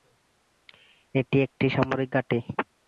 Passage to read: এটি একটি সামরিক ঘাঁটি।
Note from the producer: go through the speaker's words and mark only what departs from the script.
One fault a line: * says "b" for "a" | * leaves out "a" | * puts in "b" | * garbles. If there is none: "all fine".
all fine